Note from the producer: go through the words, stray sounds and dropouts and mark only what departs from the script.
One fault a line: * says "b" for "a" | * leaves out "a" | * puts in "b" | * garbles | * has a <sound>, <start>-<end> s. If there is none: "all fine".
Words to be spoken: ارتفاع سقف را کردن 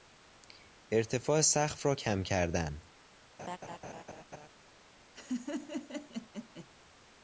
* puts in "کم"
* has a laugh, 3.4-4.5 s
* has a laugh, 5.1-6.7 s